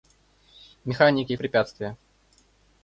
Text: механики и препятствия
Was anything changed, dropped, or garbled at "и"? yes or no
no